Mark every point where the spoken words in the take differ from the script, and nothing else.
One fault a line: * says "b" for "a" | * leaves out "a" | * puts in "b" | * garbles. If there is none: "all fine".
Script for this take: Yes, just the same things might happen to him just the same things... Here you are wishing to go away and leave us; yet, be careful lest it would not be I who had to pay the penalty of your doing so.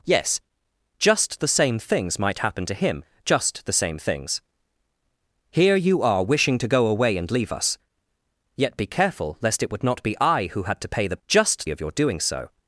* says "just" for "penalty"